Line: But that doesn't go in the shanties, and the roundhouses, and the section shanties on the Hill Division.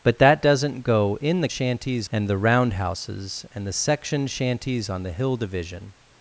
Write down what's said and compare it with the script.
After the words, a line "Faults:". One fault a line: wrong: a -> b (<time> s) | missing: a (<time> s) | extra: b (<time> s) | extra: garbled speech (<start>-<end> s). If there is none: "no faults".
But that doesn't go in the shanties, and the roundhouses, and the section shanties on the Hill Division.
Faults:
no faults